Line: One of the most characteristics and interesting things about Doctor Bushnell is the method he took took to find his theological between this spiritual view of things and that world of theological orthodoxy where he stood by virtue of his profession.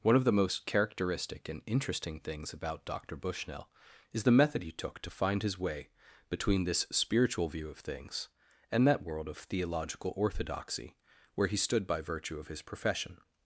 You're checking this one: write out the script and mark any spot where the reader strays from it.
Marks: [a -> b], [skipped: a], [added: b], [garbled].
One of the most [characteristics -> characteristic] and interesting things about Doctor Bushnell is the method he took [skipped: took] to find his [theological -> way] between this spiritual view of things and that world of theological orthodoxy where he stood by virtue of his profession.